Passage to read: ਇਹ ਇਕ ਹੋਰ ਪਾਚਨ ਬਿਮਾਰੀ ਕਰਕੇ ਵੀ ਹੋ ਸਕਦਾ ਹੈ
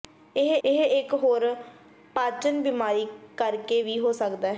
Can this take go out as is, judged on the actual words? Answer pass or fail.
fail